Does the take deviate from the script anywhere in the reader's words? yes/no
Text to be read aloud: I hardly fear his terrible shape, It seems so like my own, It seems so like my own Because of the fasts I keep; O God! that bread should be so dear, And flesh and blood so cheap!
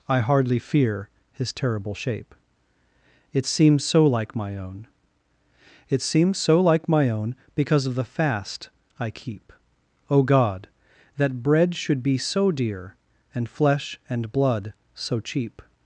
yes